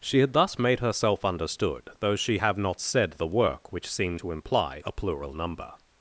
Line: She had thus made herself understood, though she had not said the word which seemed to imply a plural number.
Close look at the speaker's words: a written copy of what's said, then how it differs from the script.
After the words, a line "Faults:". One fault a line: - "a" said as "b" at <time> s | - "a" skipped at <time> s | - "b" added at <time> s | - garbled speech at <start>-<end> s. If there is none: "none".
She had thus made herself understood, though she have not said the work which seemed to imply a plural number.
Faults:
- "had" said as "have" at 2.4 s
- "word" said as "work" at 3.3 s